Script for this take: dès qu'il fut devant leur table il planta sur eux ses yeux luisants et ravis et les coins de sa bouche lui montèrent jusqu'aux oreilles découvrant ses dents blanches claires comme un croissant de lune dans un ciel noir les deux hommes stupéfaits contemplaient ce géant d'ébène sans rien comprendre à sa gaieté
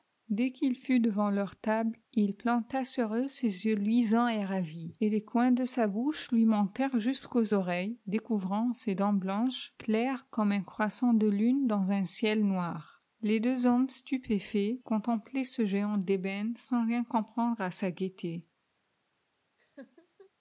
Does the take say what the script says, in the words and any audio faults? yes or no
no